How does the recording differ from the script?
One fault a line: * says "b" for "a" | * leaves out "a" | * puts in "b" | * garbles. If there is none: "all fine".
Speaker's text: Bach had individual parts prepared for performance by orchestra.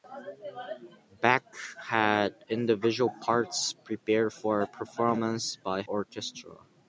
all fine